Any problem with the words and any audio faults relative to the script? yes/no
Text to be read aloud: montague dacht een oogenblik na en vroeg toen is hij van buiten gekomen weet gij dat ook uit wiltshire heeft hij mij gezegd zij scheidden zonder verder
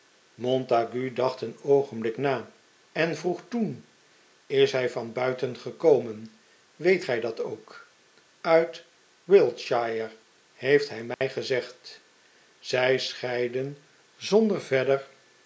yes